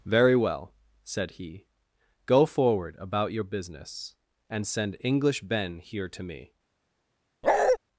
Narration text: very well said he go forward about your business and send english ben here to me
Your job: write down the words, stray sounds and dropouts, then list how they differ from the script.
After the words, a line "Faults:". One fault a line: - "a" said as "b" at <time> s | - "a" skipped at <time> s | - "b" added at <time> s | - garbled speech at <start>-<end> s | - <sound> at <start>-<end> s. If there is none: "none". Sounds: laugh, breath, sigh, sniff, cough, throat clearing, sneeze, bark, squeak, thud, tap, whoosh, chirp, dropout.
very well said he go forward about your business and send english ben here to me
Faults:
- bark at 7.4-7.8 s